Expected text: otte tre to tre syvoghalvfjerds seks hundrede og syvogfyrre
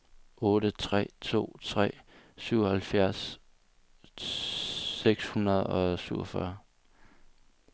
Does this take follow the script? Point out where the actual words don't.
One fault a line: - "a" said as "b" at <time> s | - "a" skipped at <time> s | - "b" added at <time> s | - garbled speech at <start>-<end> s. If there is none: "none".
none